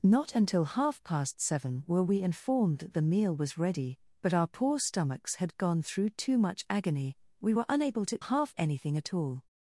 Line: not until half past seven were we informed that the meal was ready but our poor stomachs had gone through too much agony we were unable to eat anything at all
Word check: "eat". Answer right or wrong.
wrong